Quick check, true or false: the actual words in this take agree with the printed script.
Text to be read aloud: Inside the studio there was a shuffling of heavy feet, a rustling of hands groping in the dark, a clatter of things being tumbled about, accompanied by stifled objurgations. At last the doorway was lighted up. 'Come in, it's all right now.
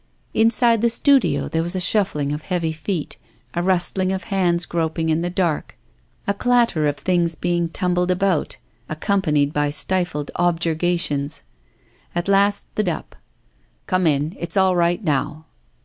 false